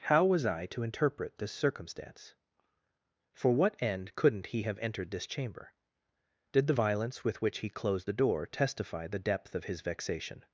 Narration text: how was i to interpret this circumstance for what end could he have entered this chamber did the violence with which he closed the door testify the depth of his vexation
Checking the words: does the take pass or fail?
fail